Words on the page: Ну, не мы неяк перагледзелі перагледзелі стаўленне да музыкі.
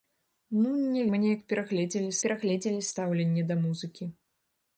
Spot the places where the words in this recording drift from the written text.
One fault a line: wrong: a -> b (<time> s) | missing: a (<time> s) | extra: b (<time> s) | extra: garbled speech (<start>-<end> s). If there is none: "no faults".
no faults